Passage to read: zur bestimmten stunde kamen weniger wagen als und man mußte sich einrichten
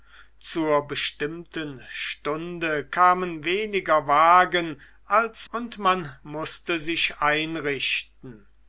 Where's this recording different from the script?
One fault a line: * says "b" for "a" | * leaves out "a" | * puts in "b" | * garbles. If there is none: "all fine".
all fine